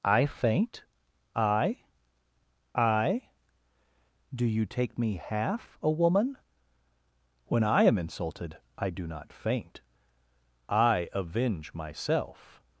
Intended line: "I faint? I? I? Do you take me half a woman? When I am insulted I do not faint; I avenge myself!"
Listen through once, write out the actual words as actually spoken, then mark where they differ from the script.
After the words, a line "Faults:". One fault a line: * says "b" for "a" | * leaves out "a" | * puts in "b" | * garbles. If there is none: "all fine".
"I faint? I? I? Do you take me half a woman? When I am insulted I do not faint; I avenge myself!"
Faults:
all fine